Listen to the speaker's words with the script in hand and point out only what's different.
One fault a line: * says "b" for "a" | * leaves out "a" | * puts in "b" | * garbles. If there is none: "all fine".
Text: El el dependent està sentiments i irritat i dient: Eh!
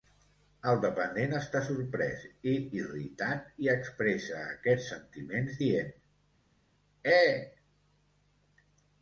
* leaves out "el"
* says "sorprès" for "sentiments"
* puts in "expressa aquests sentiments"